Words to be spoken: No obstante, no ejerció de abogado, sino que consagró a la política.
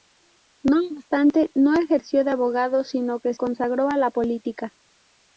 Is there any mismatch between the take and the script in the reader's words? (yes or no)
no